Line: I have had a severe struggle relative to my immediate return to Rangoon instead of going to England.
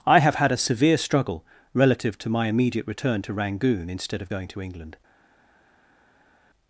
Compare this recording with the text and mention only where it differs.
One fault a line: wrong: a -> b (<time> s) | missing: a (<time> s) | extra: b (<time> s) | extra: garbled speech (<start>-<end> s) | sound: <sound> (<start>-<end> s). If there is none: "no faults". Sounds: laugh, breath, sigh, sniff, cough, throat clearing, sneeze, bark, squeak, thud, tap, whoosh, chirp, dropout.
no faults